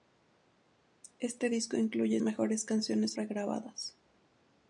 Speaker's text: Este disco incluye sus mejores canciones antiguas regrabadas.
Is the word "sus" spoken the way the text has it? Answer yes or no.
no